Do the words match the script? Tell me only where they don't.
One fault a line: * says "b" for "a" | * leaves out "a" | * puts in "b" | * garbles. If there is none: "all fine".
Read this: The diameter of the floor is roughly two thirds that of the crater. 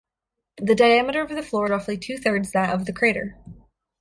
* leaves out "is"